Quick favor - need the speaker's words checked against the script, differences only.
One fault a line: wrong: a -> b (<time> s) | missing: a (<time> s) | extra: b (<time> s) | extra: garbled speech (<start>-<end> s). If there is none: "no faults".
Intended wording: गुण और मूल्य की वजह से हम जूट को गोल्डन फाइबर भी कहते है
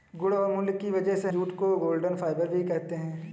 missing: हम (1.3 s)